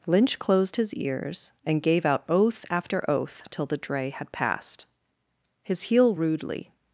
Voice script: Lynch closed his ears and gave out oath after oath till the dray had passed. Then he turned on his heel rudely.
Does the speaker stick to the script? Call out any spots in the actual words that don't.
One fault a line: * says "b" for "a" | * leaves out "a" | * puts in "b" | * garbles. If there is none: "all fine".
* leaves out "Then he turned on"